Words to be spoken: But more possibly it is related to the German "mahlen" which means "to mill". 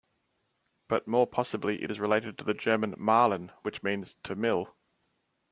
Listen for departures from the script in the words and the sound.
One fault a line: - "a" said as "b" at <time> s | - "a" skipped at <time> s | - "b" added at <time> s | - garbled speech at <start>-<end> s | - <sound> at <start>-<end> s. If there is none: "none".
none